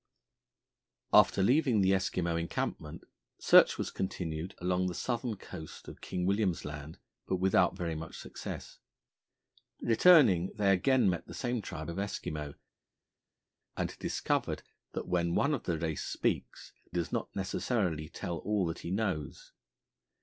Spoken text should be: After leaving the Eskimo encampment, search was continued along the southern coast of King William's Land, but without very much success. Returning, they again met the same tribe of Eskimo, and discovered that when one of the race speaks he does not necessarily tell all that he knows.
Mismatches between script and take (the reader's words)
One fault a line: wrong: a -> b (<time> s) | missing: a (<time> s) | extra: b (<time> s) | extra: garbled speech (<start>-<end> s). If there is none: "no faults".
missing: he (16.7 s)